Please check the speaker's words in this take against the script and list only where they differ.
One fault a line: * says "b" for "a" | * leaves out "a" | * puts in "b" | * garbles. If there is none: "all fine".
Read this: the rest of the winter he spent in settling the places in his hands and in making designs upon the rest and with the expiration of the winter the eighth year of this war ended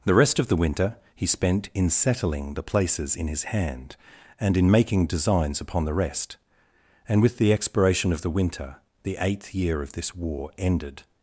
* says "hand" for "hands"